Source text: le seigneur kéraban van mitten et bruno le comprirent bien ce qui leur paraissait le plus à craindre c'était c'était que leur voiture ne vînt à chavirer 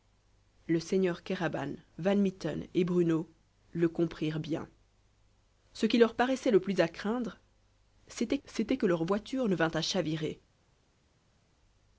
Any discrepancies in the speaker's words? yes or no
no